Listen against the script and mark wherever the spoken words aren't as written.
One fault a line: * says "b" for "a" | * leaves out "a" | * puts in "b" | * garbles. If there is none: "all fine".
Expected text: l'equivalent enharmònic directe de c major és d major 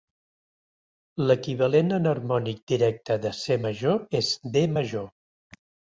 all fine